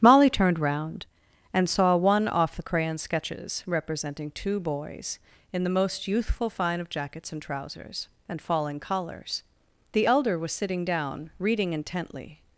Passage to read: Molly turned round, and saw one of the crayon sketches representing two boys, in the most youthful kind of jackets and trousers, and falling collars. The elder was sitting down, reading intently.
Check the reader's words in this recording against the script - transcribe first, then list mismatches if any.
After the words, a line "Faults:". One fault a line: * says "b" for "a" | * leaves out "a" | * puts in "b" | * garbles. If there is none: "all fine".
Molly turned round, and saw one off the crayon sketches representing two boys, in the most youthful fine of jackets and trousers, and falling collars. The elder was sitting down, reading intently.
Faults:
* says "off" for "of"
* says "fine" for "kind"